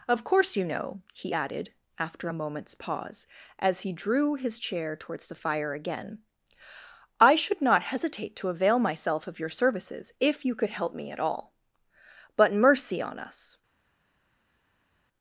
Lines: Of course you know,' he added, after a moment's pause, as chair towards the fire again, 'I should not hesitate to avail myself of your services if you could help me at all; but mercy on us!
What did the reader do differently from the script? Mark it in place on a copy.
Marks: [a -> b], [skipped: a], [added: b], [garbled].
Of course you know,' he added, after a moment's pause, as [added: he drew his] chair towards the fire again, 'I should not hesitate to avail myself of your services if you could help me at all; but mercy on us!